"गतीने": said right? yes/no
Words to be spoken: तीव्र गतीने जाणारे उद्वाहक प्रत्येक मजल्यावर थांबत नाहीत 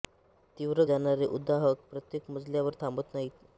no